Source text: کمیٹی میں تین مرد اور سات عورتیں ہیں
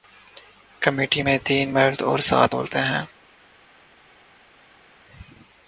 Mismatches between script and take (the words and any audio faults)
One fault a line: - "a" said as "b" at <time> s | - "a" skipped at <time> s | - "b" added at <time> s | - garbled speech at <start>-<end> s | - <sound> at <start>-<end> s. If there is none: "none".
none